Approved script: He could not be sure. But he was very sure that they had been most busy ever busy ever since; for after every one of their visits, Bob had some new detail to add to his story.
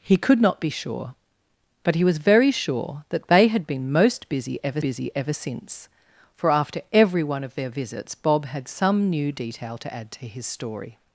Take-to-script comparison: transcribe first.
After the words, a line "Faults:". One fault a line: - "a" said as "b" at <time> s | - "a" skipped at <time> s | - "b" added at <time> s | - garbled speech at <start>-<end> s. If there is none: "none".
He could not be sure. But he was very sure that they had been most busy ever busy ever since; for after every one of their visits, Bob had some new detail to add to his story.
Faults:
none